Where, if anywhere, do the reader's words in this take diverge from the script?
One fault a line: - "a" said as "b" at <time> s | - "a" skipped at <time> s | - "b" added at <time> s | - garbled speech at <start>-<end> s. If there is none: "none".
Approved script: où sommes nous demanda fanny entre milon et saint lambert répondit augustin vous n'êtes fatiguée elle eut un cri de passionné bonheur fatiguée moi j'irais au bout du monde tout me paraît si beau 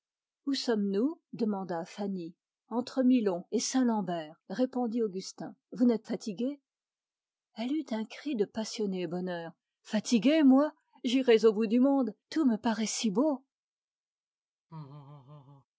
none